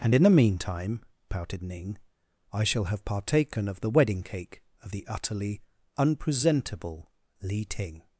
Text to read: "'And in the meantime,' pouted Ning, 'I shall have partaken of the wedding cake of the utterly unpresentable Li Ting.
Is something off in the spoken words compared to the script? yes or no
no